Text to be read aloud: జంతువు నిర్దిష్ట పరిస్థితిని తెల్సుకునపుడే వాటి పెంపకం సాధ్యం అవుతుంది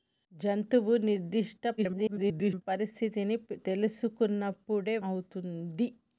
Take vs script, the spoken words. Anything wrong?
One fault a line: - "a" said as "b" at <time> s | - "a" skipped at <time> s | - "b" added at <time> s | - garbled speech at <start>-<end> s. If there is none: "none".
- garbled speech at 1.8-2.6 s
- "వాటి పెంపకం సాధ్యం" skipped at 5.0 s